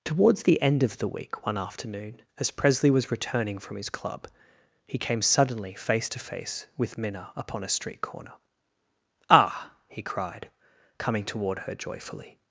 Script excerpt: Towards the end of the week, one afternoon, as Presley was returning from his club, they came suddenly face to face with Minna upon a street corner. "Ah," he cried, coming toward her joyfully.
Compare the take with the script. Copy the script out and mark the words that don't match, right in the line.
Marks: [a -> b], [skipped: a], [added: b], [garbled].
Towards the end of the week, one afternoon, as Presley was returning from his club, [they -> he] came suddenly face to face with Minna upon a street corner. "Ah," he cried, coming toward her joyfully.